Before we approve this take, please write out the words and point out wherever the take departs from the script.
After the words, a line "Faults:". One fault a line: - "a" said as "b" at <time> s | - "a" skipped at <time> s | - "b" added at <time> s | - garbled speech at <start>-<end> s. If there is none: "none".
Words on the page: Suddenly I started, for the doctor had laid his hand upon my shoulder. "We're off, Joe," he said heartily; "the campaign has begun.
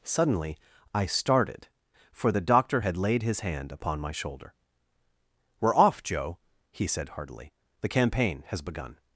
Suddenly I started, for the doctor had laid his hand upon my shoulder. "We're off, Joe," he said heartily; "the campaign has begun.
Faults:
none